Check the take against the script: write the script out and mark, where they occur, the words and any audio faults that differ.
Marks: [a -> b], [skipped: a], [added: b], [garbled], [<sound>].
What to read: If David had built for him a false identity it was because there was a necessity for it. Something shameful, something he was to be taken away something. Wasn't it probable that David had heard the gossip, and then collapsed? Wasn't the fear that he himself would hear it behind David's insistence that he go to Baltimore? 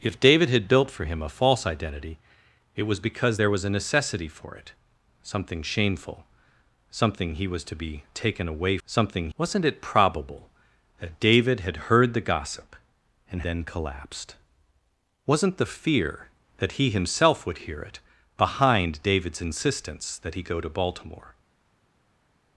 If David had built for him a false identity it was because there was a necessity for it. Something shameful, something he was to be taken away something. Wasn't it probable that David had heard the gossip, and then collapsed? Wasn't the fear that he himself would hear it behind David's insistence that he go to Baltimore?